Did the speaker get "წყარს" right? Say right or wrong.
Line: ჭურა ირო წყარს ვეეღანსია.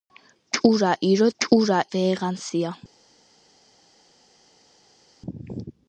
wrong